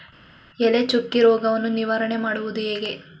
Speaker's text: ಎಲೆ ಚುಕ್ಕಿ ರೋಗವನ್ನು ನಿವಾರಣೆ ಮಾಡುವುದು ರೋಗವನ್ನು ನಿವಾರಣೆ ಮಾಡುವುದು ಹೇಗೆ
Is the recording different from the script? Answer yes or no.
yes